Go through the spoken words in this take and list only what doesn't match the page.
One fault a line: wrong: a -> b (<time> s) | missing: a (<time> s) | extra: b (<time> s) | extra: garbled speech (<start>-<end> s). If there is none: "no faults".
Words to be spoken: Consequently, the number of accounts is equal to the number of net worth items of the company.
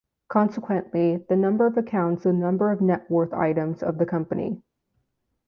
missing: is equal to (2.2 s)